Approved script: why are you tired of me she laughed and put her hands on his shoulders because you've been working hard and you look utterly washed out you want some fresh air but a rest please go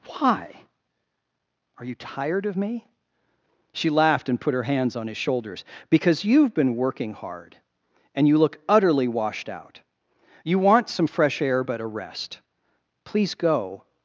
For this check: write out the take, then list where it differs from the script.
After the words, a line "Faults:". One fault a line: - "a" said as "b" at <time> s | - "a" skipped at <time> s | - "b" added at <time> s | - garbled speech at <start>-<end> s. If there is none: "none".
why are you tired of me she laughed and put her hands on his shoulders because you've been working hard and you look utterly washed out you want some fresh air but a rest please go
Faults:
none